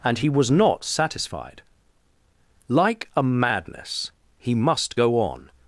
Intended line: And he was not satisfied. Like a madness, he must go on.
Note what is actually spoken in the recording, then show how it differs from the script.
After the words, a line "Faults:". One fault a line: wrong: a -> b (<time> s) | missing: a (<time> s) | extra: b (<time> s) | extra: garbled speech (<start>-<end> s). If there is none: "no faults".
And he was not satisfied. Like a madness, he must go on.
Faults:
no faults